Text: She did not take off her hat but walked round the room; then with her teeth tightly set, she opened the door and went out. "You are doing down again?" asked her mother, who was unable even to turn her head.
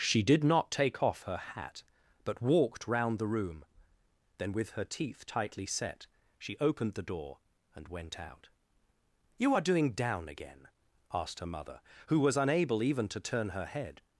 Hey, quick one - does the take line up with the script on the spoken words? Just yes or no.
yes